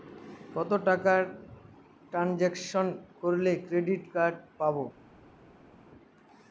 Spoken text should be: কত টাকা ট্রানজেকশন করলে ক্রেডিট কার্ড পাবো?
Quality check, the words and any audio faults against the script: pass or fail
pass